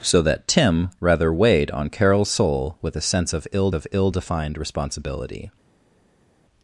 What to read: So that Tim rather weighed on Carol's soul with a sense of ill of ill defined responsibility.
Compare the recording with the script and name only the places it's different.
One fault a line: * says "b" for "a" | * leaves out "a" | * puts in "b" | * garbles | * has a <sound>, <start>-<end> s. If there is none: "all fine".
all fine